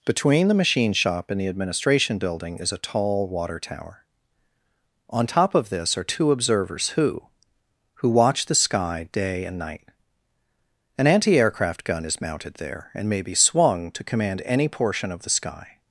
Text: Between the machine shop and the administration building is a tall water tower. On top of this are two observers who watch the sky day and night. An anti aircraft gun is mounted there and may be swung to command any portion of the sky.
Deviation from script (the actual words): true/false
true